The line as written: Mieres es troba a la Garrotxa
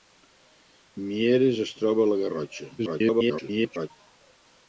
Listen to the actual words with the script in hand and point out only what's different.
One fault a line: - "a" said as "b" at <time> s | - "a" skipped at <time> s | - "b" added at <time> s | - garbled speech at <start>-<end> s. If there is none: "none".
- garbled speech at 2.8-3.9 s